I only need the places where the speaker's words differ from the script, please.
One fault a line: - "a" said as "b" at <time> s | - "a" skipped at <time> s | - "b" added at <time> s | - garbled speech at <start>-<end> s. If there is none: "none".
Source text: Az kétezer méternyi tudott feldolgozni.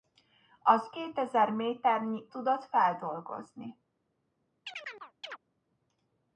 none